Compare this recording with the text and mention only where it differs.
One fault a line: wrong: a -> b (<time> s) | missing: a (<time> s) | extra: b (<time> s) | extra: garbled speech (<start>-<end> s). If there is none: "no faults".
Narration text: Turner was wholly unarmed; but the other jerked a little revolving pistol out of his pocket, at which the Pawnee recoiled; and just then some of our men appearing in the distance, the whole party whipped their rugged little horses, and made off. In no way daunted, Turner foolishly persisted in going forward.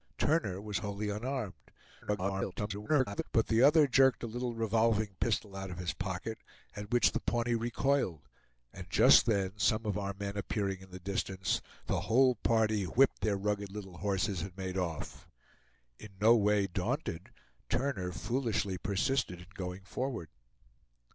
extra: garbled speech (2.0-3.2 s)